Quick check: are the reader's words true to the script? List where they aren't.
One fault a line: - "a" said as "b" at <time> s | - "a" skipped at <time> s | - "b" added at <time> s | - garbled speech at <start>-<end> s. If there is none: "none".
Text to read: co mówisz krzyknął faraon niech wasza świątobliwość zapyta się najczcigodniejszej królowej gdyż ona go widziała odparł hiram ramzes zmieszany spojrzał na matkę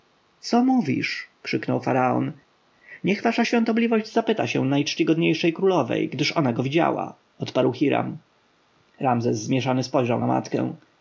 none